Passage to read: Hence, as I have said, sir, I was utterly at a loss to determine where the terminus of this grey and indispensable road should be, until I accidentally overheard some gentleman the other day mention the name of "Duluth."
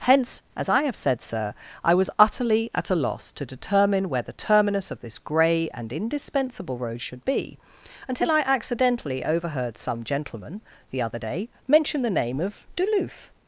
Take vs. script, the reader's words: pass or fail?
pass